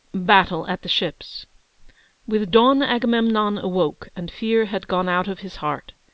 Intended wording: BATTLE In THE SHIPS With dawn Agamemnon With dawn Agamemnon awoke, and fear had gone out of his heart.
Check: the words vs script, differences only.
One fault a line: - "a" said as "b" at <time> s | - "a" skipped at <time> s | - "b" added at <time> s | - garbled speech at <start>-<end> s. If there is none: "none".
- "In" said as "AT" at 0.7 s
- "With dawn Agamemnon" skipped at 3.6 s